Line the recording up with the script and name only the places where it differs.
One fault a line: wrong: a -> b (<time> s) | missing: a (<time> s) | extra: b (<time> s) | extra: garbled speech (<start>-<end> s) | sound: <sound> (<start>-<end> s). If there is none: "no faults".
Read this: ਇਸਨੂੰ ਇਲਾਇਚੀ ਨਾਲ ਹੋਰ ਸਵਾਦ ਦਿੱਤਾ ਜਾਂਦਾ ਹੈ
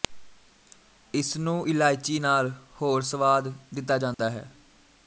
sound: dropout (4.1-4.2 s)